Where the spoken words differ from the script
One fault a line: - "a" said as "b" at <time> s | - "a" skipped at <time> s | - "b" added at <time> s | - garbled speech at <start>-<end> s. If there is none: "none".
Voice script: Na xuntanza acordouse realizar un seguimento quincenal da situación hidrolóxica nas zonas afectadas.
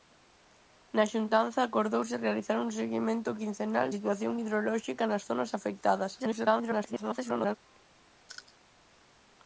- "da" skipped at 3.9 s
- garbled speech at 6.2-7.6 s